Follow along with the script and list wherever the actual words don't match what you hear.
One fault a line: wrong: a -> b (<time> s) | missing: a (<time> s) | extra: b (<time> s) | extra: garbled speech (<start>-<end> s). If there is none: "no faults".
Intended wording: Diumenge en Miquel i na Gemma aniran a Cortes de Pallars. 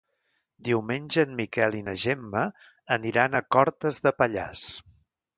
no faults